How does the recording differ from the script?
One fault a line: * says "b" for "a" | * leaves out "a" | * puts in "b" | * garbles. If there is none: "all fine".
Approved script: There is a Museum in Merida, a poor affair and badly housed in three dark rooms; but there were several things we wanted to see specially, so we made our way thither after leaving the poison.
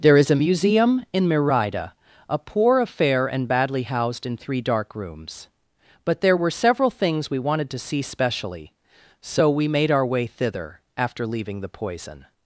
all fine